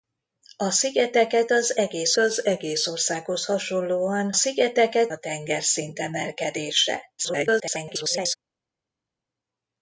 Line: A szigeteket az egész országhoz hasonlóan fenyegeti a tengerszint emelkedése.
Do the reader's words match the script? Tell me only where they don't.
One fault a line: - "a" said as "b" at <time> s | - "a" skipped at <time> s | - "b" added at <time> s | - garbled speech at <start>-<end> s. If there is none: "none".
- "az egész" added at 2.2 s
- "fenyegeti" said as "szigeteket" at 4.3 s
- garbled speech at 7.2-8.4 s